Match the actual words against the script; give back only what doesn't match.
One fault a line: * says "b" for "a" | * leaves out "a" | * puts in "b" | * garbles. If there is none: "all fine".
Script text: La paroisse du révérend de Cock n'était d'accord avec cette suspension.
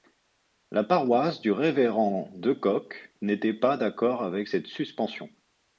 * puts in "pas"